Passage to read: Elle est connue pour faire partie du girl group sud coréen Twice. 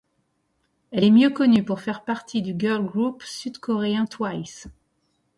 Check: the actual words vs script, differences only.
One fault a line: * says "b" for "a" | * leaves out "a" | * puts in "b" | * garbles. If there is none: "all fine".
* puts in "mieux"